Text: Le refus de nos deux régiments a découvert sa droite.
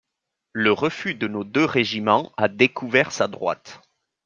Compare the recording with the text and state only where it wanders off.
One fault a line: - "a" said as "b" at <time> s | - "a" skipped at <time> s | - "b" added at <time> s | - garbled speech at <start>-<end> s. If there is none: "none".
none